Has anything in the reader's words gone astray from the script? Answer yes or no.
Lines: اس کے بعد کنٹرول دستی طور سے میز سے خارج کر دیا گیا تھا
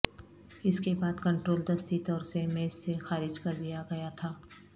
no